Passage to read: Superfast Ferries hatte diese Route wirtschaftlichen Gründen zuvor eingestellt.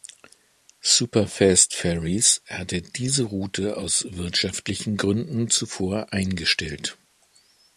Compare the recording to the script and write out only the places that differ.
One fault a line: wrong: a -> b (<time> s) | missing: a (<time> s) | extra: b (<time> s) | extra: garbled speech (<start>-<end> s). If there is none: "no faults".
extra: aus (3.8 s)